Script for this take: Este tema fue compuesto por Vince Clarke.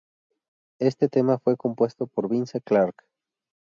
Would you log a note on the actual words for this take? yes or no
no